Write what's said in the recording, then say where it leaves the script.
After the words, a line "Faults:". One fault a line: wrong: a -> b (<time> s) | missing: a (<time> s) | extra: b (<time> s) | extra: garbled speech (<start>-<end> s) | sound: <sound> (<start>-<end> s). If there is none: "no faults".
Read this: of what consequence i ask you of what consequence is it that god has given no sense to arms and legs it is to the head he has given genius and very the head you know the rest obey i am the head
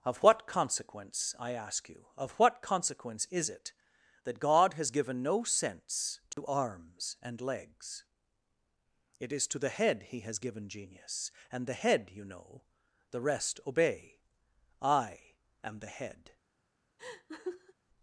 of what consequence i ask you of what consequence is it that god has given no sense to arms and legs it is to the head he has given genius and the head you know the rest obey i am the head
Faults:
sound: dropout (6.3-6.4 s)
missing: very (11.7 s)
sound: laugh (17.0-17.7 s)